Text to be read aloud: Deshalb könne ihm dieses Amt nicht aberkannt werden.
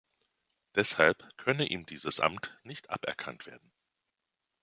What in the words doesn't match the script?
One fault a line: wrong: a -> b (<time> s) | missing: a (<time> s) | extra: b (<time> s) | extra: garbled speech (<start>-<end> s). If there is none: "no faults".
no faults